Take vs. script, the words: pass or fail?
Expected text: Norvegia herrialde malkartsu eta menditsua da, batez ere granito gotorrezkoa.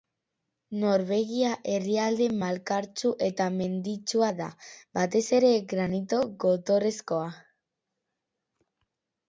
pass